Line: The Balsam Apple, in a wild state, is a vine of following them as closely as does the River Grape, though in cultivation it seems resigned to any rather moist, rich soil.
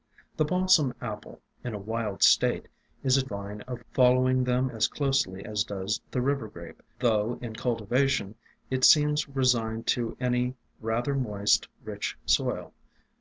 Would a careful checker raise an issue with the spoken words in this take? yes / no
no